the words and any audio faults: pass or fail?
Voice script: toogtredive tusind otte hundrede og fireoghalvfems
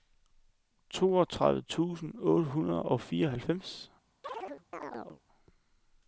fail